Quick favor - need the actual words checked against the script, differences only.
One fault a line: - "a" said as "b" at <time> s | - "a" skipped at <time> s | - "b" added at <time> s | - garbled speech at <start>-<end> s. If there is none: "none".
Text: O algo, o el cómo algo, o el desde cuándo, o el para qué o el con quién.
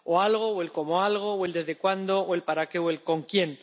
none